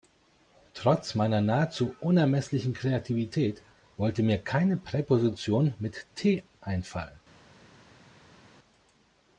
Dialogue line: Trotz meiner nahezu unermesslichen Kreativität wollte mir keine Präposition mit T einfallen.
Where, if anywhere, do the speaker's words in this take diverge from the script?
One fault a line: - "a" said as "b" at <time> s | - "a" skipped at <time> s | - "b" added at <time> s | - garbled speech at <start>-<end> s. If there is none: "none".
none